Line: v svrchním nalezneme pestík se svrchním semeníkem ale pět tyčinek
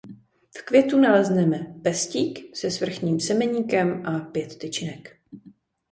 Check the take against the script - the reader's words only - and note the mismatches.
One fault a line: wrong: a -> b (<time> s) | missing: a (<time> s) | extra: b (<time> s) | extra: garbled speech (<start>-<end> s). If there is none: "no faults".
wrong: svrchním -> květu (0.7 s)
wrong: ale -> a (4.1 s)